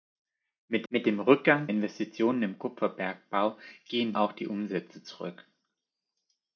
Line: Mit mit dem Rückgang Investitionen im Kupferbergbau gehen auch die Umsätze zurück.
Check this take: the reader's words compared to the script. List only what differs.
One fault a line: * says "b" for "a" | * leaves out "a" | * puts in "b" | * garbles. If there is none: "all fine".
all fine